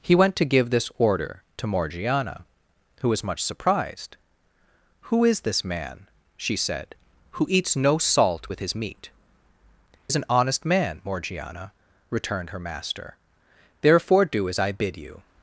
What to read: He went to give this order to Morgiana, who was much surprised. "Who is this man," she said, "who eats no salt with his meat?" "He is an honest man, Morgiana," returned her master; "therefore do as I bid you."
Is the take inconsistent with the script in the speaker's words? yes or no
yes